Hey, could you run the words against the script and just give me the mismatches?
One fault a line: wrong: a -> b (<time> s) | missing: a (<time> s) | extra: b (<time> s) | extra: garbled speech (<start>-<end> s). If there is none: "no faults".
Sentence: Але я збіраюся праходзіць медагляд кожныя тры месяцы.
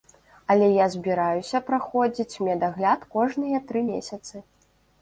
no faults